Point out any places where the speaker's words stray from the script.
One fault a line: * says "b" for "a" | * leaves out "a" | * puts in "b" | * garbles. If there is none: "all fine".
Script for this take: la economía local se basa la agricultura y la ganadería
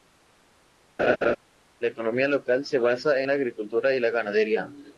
all fine